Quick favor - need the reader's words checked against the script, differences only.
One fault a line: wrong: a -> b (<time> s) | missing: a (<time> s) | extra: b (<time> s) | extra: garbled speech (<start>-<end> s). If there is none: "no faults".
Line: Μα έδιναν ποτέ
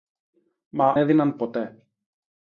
no faults